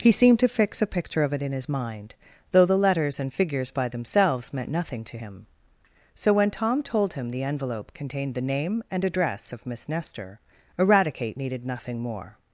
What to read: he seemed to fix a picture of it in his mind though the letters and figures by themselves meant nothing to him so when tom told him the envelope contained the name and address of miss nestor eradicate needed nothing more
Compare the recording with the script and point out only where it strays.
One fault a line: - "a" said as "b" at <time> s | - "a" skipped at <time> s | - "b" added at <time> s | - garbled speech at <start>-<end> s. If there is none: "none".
none